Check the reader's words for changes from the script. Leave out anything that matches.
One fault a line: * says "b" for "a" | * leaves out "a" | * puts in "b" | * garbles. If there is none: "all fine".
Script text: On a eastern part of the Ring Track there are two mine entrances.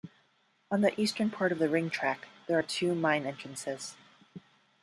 * says "the" for "a"